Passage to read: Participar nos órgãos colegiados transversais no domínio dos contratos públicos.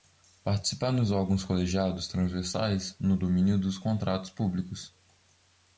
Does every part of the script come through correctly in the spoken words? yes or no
yes